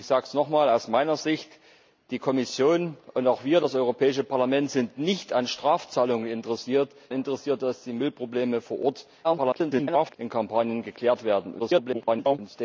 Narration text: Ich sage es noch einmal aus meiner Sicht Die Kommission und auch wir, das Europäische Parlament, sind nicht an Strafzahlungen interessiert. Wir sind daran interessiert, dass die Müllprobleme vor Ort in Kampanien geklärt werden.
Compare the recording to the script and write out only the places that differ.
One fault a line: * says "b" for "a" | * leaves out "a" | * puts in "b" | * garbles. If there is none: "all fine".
* leaves out "Wir sind daran"
* garbles
* garbles